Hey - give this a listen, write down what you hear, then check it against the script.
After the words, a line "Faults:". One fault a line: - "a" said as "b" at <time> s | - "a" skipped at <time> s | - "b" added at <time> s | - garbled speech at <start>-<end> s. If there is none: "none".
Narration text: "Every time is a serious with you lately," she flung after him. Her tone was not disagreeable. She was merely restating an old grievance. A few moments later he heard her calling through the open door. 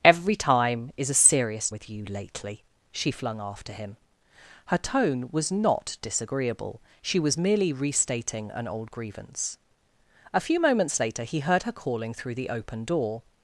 "Every time is a serious with you lately," she flung after him. Her tone was not disagreeable. She was merely restating an old grievance. A few moments later he heard her calling through the open door.
Faults:
none